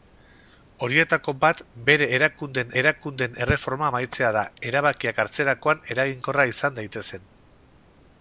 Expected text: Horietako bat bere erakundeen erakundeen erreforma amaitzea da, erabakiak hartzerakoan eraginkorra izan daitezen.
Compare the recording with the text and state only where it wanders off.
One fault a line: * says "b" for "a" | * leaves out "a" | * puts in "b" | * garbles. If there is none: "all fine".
all fine